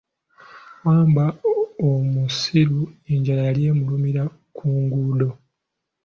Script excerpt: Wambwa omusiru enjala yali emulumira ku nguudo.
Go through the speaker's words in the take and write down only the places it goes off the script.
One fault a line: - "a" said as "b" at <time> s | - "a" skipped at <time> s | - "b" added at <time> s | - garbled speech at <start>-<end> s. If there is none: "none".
none